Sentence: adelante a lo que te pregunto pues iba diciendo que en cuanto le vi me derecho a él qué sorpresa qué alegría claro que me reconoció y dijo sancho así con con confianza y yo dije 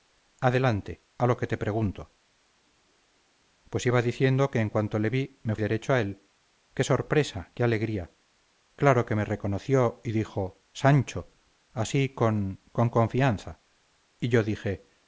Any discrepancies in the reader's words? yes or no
no